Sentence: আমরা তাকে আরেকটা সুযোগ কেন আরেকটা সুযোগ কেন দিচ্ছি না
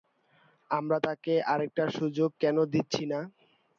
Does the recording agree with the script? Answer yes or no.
no